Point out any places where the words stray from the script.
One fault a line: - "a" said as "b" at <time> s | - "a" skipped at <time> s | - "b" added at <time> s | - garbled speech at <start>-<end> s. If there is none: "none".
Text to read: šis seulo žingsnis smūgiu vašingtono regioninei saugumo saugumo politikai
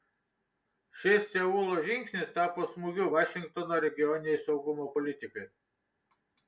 - "tapo" added at 2.4 s
- "saugumo" skipped at 4.9 s